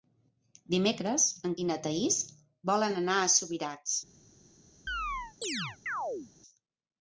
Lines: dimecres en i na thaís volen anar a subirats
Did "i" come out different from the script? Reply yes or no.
no